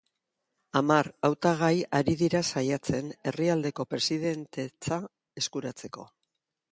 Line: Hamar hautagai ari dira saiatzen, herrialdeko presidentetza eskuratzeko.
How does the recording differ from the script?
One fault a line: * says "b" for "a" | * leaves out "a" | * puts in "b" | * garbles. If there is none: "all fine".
all fine